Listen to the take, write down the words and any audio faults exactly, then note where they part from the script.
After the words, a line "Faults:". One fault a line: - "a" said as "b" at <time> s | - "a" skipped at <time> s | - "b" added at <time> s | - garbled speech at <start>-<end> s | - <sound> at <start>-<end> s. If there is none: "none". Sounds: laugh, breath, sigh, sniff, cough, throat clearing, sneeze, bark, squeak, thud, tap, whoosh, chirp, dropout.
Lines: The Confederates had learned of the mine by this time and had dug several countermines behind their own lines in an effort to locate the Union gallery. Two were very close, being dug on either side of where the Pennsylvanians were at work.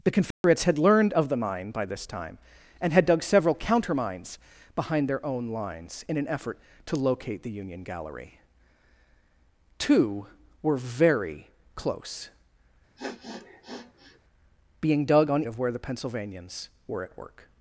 The Confederates had learned of the mine by this time and had dug several countermines behind their own lines in an effort to locate the Union gallery. Two were very close, being dug on of where the Pennsylvanians were at work.
Faults:
- dropout at 0.3-0.4 s
- sniff at 13.0-14.2 s
- "either side" skipped at 15.4 s